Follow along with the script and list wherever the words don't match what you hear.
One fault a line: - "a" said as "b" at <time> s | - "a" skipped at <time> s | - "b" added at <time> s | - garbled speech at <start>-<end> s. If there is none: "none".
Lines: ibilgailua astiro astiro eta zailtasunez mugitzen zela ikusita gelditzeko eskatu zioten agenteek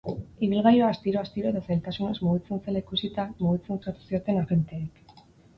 - "gelditzeko" said as "mugitzen" at 3.5 s